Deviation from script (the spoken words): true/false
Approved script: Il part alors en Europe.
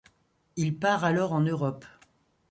false